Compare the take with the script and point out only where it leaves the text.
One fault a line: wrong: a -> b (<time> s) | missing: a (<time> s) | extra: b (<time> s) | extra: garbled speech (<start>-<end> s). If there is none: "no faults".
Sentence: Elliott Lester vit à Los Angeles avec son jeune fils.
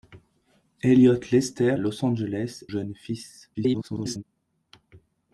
missing: vit (1.8 s)
missing: avec son (2.6 s)
extra: garbled speech (3.5-4.2 s)